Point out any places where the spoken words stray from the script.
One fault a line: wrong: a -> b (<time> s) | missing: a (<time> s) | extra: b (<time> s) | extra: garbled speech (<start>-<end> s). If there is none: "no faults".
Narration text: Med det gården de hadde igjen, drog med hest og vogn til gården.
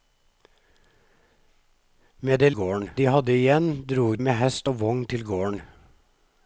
no faults